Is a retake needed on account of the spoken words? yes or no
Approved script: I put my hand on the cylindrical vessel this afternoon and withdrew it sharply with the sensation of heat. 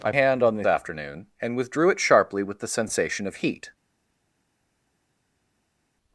yes